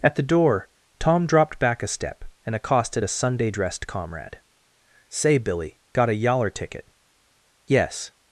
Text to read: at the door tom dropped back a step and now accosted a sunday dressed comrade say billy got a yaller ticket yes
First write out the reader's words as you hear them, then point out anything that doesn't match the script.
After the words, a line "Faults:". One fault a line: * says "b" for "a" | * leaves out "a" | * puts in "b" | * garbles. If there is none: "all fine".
at the door tom dropped back a step and accosted a sunday dressed comrade say billy got a yaller ticket yes
Faults:
* leaves out "now"